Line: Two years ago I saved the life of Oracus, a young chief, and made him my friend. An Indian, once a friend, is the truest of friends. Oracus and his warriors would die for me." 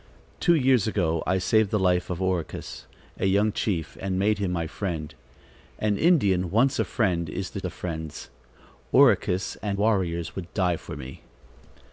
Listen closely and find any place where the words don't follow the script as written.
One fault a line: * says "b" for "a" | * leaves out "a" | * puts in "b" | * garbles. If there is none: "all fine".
* leaves out "truest"
* leaves out "his"